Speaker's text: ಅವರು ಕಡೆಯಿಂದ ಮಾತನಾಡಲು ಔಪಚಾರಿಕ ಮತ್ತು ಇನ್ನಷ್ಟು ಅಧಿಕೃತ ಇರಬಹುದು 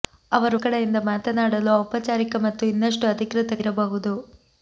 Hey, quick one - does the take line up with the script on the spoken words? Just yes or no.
yes